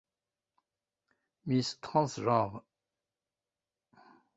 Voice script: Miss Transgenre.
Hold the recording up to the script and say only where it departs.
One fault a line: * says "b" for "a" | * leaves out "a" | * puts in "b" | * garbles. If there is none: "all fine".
all fine